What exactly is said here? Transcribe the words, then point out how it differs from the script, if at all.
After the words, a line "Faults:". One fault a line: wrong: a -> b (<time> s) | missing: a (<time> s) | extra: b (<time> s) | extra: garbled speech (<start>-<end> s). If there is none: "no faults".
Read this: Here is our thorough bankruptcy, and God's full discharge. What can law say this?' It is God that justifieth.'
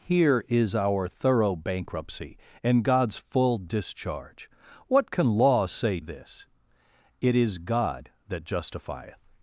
Here is our thorough bankruptcy, and God's full discharge. What can law say this?' It is God that justifieth.'
Faults:
no faults